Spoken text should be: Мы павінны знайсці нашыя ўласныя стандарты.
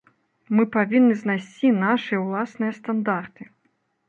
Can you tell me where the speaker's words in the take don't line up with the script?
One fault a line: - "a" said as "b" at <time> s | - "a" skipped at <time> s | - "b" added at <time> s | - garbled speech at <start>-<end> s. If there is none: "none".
none